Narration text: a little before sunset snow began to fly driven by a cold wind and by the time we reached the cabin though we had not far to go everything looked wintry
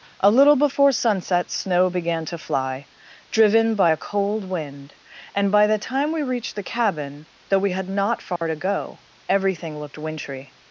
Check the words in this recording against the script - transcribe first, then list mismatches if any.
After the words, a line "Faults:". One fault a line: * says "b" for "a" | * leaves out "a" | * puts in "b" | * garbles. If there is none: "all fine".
a little before sunset snow began to fly driven by a cold wind and by the time we reached the cabin though we had not far to go everything looked wintry
Faults:
all fine